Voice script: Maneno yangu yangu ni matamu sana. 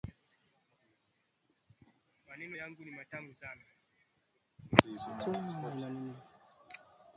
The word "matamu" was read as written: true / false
true